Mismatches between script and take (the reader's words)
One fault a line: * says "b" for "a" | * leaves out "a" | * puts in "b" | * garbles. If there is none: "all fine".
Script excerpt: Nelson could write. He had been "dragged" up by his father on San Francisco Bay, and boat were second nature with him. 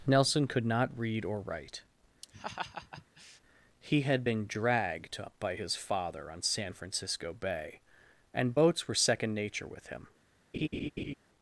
* puts in "not read or"
* says "boats" for "boat"